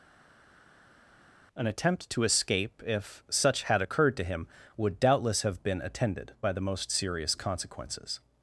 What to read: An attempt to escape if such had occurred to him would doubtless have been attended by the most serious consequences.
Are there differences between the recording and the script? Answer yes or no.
no